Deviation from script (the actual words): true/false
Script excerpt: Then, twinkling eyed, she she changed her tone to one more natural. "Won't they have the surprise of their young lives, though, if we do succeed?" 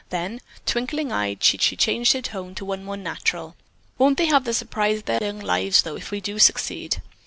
false